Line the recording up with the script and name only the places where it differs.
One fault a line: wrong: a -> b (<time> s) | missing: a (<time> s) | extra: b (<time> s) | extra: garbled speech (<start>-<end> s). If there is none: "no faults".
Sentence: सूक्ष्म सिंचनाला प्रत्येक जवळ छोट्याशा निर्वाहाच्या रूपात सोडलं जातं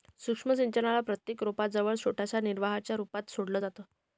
extra: रोपा (1.4 s)